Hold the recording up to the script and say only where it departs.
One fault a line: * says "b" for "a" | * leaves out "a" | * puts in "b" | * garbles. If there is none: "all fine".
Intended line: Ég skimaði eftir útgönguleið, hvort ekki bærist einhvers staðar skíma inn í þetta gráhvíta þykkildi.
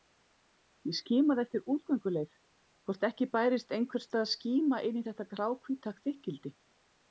all fine